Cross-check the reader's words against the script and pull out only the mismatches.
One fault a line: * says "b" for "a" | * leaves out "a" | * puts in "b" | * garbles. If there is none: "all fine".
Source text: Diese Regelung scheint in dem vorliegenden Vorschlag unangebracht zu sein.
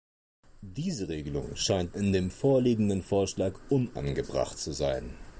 all fine